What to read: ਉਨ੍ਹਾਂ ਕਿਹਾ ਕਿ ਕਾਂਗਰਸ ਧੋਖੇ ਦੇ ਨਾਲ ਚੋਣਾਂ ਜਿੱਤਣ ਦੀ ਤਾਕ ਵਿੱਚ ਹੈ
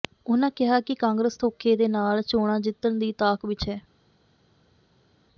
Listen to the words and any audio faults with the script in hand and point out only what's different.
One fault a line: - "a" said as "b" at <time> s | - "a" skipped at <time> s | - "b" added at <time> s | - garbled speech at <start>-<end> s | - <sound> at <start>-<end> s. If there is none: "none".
none